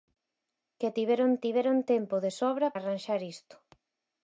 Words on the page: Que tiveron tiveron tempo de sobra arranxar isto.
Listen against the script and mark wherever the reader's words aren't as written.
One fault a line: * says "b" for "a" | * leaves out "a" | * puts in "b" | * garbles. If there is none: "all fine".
all fine